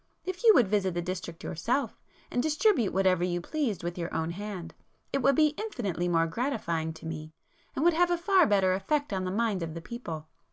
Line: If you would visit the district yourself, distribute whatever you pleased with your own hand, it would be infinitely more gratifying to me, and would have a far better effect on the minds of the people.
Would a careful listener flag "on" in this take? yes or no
no